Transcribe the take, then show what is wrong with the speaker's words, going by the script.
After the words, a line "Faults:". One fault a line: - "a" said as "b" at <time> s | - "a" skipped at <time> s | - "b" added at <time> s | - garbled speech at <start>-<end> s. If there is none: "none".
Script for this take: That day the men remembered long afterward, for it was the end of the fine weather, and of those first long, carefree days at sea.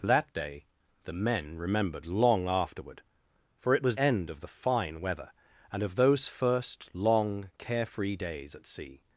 That day the men remembered long afterward, for it was end of the fine weather, and of those first long, carefree days at sea.
Faults:
- "the" skipped at 4.0 s